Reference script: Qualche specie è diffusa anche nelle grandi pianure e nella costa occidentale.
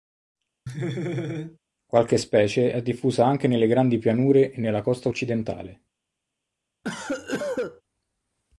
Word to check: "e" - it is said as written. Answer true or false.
true